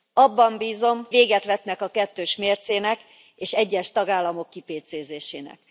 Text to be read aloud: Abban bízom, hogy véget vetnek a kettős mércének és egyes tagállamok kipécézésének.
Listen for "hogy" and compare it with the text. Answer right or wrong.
wrong